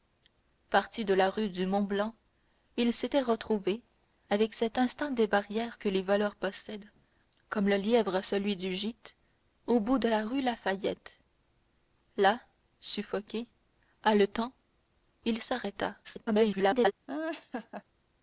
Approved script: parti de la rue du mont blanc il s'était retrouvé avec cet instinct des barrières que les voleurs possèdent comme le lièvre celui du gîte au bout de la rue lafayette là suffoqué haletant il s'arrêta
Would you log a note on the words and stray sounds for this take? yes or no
yes